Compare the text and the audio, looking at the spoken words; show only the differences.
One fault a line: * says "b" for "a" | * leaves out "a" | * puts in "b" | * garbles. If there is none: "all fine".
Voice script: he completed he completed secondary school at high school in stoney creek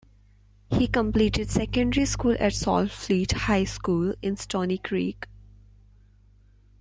* leaves out "he completed"
* puts in "saltfleet"